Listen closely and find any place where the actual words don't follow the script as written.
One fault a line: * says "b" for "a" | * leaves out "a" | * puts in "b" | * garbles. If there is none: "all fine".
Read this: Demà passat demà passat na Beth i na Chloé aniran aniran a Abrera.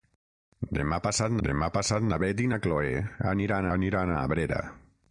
all fine